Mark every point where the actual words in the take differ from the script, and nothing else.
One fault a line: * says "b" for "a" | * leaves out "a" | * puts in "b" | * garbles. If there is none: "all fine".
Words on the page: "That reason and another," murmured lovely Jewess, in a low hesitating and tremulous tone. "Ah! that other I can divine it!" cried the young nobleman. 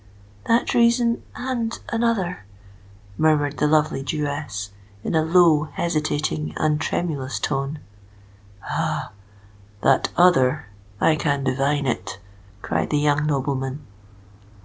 * puts in "the"